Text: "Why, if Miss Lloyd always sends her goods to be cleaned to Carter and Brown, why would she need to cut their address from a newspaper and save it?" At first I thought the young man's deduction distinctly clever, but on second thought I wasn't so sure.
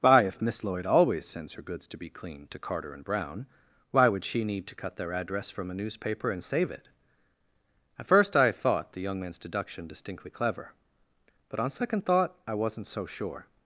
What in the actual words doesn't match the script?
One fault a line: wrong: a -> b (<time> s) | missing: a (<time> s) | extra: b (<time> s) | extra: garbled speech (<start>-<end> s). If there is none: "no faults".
no faults